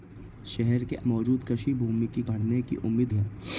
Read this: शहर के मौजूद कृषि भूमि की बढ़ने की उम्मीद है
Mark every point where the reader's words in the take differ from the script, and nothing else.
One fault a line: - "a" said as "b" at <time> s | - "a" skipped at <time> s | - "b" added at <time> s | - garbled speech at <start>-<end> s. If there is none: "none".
none